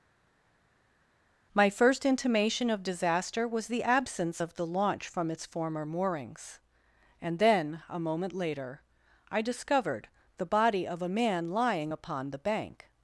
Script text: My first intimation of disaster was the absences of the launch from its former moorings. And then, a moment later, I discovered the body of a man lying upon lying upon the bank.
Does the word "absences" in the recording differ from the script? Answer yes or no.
yes